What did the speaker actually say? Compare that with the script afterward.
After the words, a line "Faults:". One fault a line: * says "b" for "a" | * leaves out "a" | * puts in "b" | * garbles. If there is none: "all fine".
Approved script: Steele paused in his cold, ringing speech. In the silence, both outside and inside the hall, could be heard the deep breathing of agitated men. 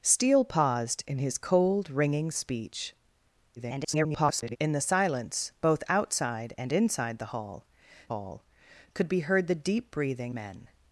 Steele paused in his cold, ringing speech. [garbled] In the silence, both outside and inside the hall hall, could be heard the deep breathing men.
Faults:
* garbles
* puts in "hall"
* leaves out "of agitated"